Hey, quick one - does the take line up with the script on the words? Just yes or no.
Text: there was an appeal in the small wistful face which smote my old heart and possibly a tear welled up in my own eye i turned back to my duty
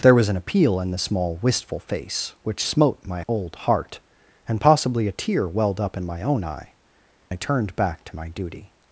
yes